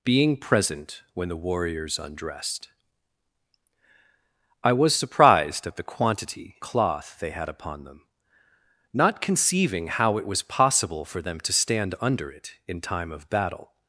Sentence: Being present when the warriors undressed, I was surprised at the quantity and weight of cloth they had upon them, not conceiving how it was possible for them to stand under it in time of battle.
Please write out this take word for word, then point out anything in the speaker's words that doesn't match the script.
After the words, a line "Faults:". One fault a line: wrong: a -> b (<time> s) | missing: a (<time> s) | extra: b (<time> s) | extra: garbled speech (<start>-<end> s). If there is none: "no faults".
Being present when the warriors undressed, I was surprised at the quantity cloth they had upon them, not conceiving how it was possible for them to stand under it in time of battle.
Faults:
missing: and weight of (6.5 s)